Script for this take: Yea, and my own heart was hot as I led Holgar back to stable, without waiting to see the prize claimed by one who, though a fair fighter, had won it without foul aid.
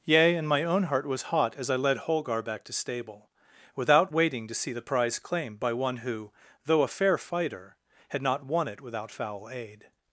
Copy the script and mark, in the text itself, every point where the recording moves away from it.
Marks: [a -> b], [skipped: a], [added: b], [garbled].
Yea, and my own heart was hot as I led Holgar back to stable, without waiting to see the prize claimed by one who, though a fair fighter, had [added: not] won it without foul aid.